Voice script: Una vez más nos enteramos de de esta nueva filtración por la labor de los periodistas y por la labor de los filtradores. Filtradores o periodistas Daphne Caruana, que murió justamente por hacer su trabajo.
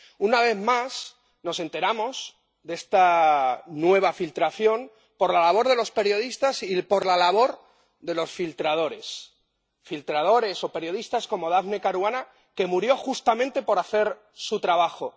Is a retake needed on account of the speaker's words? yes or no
yes